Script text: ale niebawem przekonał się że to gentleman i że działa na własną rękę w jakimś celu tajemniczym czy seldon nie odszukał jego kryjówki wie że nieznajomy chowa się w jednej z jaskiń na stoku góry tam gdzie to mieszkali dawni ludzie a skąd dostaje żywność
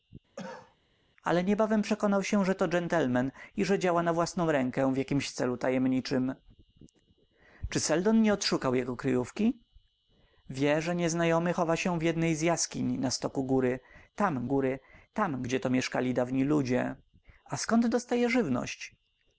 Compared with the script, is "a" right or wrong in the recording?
right